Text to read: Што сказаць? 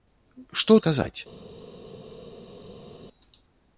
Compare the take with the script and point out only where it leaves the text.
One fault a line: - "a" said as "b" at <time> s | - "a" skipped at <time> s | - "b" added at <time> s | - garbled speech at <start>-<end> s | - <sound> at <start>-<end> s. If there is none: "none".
none